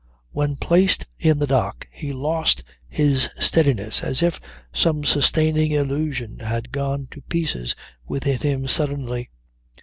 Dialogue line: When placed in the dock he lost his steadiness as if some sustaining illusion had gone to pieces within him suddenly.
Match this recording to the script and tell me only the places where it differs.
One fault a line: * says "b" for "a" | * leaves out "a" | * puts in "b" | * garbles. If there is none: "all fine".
all fine